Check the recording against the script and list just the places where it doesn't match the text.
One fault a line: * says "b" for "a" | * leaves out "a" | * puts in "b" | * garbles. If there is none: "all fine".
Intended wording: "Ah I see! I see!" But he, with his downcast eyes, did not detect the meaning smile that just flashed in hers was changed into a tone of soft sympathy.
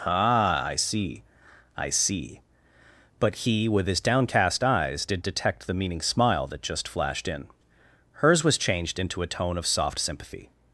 * leaves out "not"